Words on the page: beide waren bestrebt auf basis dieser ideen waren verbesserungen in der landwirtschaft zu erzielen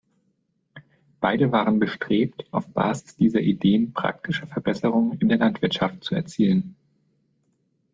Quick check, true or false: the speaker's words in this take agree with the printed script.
false